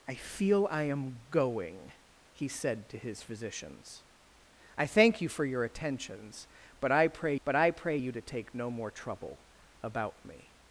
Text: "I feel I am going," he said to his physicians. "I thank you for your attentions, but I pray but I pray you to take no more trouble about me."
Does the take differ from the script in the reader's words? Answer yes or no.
no